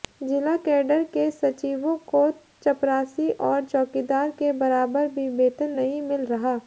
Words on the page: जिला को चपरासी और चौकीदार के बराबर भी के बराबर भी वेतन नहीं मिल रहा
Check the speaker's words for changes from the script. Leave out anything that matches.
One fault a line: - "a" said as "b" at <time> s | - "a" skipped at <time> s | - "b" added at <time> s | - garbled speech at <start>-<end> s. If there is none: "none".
- "कैडर के सचिवों" added at 0.6 s
- "के बराबर भी" skipped at 5.3 s